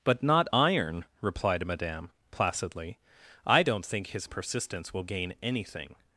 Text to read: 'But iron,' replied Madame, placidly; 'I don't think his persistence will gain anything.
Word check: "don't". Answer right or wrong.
right